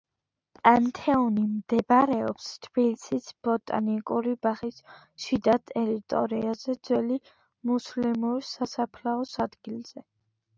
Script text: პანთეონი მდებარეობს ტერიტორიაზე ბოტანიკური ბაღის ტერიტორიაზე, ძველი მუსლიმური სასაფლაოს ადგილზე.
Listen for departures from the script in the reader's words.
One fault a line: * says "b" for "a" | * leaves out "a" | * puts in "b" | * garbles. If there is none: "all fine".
* says "თბილისის" for "ტერიტორიაზე"
* puts in "შიდა"